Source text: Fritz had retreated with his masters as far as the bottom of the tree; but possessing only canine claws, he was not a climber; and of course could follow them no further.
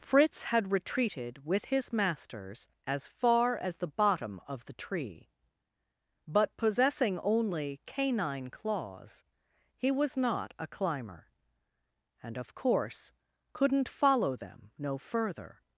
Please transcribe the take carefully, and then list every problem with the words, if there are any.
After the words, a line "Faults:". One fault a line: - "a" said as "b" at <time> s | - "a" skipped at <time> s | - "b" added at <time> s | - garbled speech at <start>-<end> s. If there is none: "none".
Fritz had retreated with his masters as far as the bottom of the tree; but possessing only canine claws, he was not a climber; and of course couldn't follow them no further.
Faults:
- "could" said as "couldn't" at 13.5 s